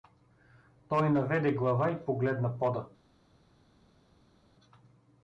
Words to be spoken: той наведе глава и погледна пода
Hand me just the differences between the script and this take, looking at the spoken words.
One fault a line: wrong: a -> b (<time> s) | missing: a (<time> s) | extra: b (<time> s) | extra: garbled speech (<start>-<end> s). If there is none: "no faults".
no faults